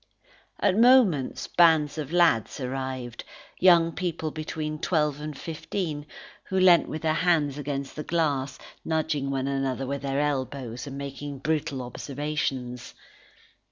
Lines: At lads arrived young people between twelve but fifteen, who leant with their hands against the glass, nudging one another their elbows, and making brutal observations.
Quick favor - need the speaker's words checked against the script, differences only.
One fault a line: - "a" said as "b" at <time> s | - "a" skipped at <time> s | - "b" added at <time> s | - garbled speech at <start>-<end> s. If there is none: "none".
- "moments bands of" added at 0.8 s
- "but" said as "and" at 5.2 s
- "with" added at 9.8 s